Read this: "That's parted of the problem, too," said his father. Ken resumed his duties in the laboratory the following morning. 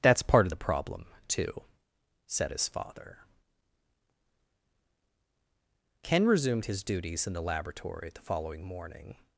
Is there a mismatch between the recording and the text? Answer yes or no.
yes